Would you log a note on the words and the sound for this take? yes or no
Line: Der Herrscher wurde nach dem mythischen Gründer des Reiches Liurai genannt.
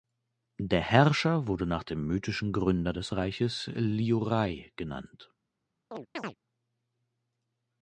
yes